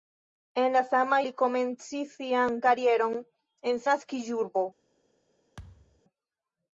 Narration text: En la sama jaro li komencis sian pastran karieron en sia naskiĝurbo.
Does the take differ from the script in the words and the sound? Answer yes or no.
yes